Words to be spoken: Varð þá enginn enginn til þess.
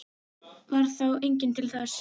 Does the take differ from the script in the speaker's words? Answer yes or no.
yes